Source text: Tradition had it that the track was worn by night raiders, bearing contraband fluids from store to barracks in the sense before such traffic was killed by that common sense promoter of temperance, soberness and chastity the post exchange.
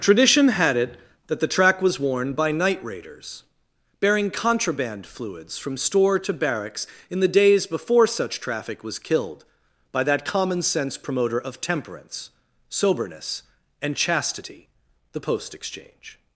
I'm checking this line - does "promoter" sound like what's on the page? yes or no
yes